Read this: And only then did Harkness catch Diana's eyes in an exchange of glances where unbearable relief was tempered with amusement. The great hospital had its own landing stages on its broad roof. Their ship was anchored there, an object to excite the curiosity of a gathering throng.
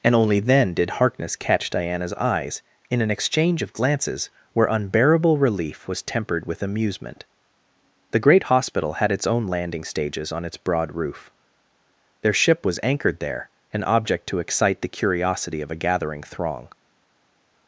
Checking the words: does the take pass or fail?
pass